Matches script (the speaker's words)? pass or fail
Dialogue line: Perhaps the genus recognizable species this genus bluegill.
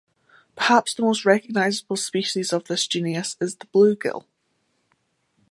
fail